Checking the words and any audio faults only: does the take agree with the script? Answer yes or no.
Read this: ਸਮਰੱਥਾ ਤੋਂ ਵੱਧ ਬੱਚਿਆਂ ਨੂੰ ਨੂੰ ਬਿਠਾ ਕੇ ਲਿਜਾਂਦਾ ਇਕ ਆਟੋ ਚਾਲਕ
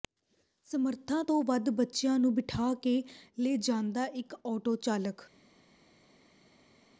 no